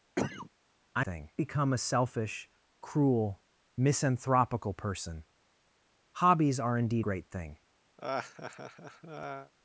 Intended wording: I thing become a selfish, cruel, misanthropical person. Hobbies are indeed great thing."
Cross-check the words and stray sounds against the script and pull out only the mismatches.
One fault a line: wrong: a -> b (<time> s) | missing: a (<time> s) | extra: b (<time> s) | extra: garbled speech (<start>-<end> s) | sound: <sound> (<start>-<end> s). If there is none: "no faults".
sound: cough (0.2-0.5 s)
sound: laugh (8.0-9.5 s)